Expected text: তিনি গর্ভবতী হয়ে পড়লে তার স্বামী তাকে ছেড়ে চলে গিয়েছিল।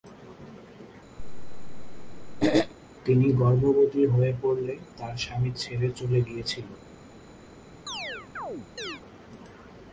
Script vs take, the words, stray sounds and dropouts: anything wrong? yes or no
yes